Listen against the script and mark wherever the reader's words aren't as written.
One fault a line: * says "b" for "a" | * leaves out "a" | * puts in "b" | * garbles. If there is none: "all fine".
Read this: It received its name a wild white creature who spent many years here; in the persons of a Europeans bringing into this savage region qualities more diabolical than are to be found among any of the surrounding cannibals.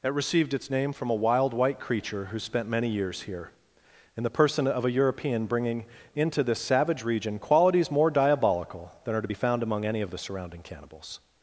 * puts in "from"
* says "person" for "persons"
* says "European" for "Europeans"